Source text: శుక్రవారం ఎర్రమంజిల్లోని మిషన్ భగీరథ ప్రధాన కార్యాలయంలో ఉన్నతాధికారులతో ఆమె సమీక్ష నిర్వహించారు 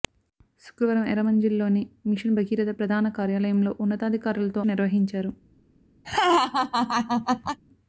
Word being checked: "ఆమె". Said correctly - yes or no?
no